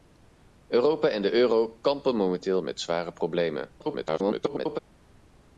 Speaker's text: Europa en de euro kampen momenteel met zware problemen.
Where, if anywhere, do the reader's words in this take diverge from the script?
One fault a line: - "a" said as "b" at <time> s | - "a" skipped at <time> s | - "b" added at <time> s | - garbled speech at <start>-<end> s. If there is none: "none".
- garbled speech at 3.8-4.8 s